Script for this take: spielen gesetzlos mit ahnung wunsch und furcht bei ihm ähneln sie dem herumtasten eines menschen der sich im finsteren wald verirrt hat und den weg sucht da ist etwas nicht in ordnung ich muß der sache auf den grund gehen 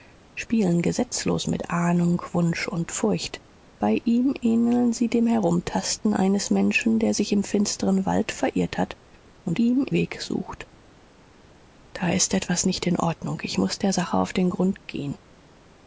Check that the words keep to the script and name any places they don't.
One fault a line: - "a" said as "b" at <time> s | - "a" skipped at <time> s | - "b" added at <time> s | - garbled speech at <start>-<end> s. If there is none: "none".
- "den" said as "ihm" at 9.5 s